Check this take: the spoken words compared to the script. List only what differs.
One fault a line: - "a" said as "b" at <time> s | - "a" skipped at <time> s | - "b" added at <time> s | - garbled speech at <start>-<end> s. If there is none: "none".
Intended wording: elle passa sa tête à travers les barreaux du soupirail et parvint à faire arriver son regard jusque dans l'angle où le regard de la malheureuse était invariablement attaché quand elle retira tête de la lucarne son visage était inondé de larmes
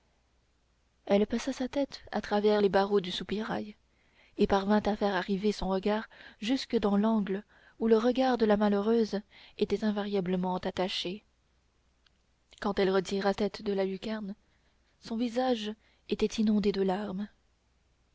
none